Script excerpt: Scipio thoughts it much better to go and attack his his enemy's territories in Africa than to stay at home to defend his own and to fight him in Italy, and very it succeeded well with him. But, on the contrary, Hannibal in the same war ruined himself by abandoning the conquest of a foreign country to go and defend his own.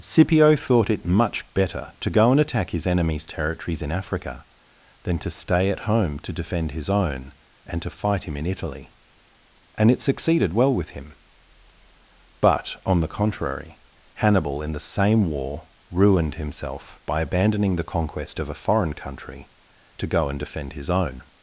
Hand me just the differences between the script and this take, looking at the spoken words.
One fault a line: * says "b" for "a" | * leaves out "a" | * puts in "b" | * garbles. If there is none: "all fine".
* says "thought" for "thoughts"
* leaves out "his"
* leaves out "very"